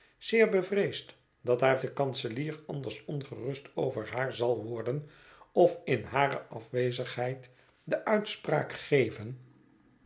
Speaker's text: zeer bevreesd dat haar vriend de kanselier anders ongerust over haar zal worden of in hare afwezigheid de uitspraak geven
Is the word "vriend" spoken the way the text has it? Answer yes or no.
no